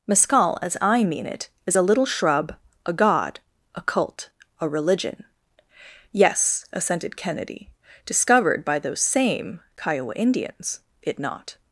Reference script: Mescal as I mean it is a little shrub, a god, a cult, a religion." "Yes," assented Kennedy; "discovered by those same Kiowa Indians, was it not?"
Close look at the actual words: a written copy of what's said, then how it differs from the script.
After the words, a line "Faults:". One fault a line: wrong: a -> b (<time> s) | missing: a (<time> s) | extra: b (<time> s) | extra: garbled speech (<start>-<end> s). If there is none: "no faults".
Mescal as I mean it is a little shrub, a god, a cult, a religion." "Yes," assented Kennedy; "discovered by those same Kiowa Indians, it not?"
Faults:
missing: was (10.8 s)